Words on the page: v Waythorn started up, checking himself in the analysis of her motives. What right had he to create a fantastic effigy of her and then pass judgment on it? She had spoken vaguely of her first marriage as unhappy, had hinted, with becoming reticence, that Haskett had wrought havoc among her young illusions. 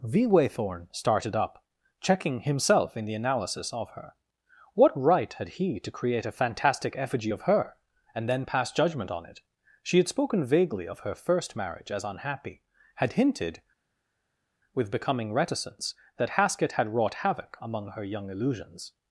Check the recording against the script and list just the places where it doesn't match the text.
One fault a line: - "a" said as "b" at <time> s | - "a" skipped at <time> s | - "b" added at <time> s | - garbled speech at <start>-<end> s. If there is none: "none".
- "motives" skipped at 4.1 s